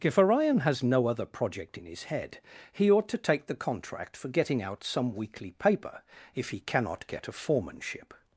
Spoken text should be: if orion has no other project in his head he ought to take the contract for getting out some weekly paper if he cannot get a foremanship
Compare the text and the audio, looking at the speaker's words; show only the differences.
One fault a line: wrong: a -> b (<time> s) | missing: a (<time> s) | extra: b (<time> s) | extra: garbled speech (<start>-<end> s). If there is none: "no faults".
no faults